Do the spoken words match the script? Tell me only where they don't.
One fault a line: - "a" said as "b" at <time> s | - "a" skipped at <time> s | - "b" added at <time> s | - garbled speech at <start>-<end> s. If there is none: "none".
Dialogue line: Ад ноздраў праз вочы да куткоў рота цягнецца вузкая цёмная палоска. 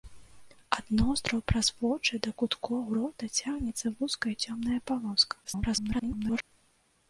- garbled speech at 5.4-6.4 s